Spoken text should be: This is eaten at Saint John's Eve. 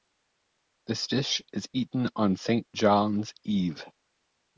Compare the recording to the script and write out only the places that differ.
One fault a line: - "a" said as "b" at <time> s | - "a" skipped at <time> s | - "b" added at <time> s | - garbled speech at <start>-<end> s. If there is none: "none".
- "dish" added at 1.1 s
- "at" said as "on" at 2.1 s